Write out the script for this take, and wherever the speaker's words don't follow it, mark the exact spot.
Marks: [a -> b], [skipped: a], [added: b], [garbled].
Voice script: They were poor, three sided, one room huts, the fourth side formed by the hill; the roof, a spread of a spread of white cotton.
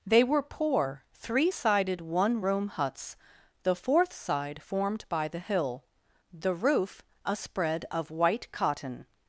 They were poor, three sided, one room huts, the fourth side formed by the hill; the roof, a spread of [skipped: a spread of] white cotton.